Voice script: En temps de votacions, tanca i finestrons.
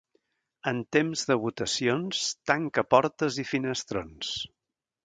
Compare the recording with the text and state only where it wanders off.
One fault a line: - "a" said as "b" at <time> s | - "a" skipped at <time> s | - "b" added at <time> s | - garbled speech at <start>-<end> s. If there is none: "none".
- "portes" added at 3.0 s